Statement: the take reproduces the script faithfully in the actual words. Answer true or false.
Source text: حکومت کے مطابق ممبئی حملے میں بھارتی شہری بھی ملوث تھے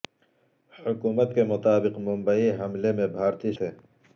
false